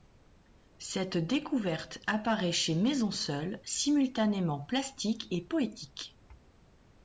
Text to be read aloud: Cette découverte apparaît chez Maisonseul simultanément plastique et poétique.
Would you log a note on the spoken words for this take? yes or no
no